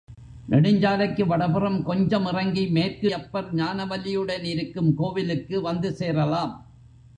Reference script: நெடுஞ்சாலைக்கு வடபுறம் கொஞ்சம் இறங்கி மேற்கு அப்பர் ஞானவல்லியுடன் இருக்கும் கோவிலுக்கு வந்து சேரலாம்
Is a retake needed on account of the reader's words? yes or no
no